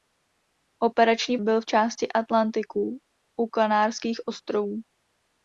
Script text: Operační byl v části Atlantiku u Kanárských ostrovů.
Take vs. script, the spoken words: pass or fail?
pass